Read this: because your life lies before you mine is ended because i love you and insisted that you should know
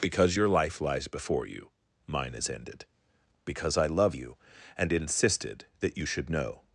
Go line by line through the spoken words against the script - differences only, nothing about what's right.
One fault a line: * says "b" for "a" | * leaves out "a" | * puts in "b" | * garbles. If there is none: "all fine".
all fine